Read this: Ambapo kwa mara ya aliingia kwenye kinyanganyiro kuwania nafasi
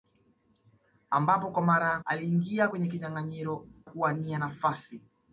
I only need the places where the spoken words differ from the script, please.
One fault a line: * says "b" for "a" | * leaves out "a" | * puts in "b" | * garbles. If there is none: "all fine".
all fine